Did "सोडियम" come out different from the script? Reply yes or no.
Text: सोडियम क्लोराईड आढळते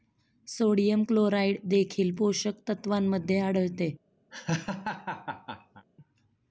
no